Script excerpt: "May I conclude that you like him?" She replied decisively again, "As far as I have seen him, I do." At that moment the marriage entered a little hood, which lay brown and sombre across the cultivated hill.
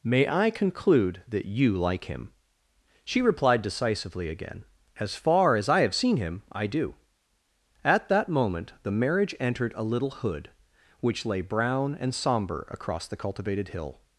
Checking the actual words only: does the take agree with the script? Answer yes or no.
yes